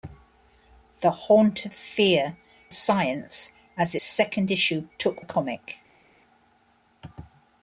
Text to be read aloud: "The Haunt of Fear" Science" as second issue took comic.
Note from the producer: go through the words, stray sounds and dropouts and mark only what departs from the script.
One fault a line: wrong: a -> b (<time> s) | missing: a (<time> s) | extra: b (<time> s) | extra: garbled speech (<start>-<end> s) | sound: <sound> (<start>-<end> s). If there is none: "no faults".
no faults